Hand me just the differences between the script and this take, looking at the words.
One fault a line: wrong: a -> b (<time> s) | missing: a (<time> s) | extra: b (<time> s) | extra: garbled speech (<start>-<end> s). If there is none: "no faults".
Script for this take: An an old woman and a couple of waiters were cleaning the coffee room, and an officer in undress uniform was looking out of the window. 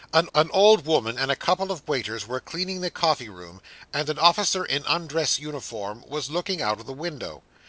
no faults